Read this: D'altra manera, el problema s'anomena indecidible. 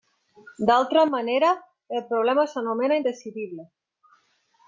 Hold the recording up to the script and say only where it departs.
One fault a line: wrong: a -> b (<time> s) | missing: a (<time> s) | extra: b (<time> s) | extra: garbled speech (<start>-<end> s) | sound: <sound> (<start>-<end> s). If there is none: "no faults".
no faults